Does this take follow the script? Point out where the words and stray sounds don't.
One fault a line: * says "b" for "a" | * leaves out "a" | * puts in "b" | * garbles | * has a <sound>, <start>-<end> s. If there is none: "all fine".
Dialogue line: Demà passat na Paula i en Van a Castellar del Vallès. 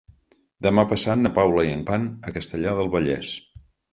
all fine